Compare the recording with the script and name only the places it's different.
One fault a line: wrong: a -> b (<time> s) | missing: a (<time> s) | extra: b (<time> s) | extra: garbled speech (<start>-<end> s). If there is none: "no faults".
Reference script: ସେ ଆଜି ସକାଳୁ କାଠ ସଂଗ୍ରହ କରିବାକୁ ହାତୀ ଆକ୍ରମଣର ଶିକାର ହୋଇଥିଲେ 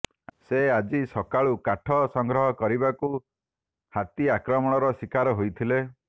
no faults